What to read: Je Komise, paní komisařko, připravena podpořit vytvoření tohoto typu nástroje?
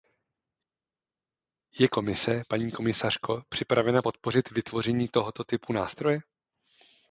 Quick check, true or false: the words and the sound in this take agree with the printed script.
true